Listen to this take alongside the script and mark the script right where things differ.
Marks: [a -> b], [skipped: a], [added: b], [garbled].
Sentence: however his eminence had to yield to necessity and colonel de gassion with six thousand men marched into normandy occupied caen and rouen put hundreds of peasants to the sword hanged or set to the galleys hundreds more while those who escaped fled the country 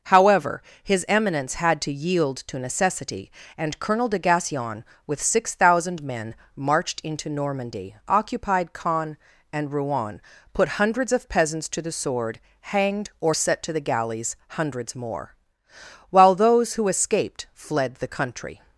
however his eminence had to yield to necessity and colonel de gassion with six thousand men marched into normandy occupied caen and rouen put hundreds of peasants to the sword hanged or set to the galleys hundreds more while those who escaped fled the country